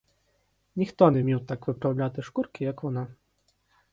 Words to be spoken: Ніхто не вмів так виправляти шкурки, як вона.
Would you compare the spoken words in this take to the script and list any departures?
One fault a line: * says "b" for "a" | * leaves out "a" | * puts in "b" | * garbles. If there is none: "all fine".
all fine